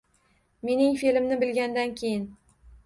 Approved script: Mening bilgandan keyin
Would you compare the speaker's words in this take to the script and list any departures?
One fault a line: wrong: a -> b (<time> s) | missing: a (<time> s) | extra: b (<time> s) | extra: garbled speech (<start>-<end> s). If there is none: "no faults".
extra: fe`limni (1.0 s)